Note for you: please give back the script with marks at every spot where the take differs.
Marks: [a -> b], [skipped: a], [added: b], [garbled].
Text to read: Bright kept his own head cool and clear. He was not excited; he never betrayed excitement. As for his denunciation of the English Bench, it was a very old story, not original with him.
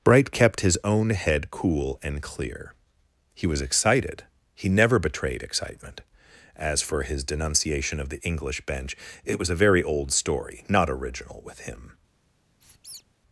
Bright kept his own head cool and clear. He was [skipped: not] excited; he never betrayed excitement. As for his denunciation of the English Bench, it was a very old story, not original with him.